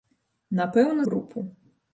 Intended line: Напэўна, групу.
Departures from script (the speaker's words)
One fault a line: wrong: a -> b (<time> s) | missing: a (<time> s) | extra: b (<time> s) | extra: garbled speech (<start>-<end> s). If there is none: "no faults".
no faults